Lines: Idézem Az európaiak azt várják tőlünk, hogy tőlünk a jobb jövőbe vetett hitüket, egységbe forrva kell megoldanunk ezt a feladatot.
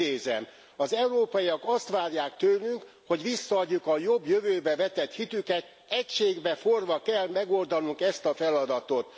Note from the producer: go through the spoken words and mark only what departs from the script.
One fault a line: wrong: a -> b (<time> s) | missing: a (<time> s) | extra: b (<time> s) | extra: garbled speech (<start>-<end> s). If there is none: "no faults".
wrong: tőlünk -> visszaadjuk (3.2 s)